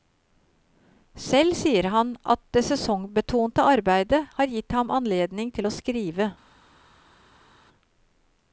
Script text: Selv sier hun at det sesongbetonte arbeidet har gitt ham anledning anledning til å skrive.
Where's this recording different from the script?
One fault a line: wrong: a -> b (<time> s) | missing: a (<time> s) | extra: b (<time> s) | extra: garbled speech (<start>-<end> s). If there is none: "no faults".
wrong: hun -> han (1.9 s)
missing: anledning (5.5 s)